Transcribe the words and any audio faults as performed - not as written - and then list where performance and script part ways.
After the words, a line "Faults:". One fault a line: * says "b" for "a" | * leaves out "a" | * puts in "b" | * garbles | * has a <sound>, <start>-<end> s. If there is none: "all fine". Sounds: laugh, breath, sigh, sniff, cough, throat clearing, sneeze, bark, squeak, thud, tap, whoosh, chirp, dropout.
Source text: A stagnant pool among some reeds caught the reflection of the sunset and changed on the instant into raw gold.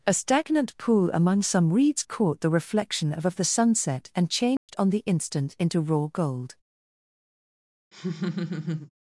A stagnant pool among some reeds caught the reflection of of the sunset and changed on the instant into raw gold.
Faults:
* puts in "of"
* has a dropout, 4.6-4.7 s
* has a laugh, 7.9-8.9 s